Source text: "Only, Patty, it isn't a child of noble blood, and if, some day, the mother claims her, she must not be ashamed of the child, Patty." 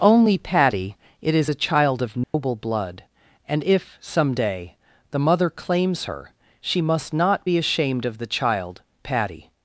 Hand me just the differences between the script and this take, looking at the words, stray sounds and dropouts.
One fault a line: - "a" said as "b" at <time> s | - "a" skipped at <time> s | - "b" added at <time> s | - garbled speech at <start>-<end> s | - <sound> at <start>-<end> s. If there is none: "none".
- "isn't" said as "is" at 1.4 s
- dropout at 2.2-2.3 s